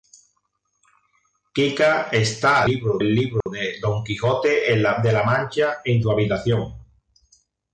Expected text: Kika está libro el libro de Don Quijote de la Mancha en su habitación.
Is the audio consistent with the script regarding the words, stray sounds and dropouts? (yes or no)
no